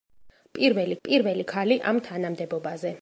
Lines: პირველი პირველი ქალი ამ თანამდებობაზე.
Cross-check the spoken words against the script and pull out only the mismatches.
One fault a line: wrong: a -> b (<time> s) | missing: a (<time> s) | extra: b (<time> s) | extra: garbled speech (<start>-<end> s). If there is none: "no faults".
no faults